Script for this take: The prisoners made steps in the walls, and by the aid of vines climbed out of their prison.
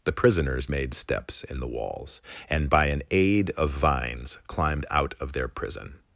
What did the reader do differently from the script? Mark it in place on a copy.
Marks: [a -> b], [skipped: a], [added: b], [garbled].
The prisoners made steps in the walls, and by [the -> an] aid of vines climbed out of their prison.